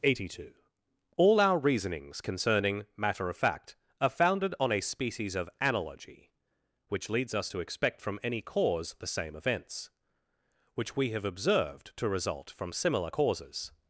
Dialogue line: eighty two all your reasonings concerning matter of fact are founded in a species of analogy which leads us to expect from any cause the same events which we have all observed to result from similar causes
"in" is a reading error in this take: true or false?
true